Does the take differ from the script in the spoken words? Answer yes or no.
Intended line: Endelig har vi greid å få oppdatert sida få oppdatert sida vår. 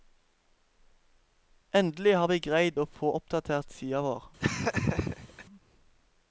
yes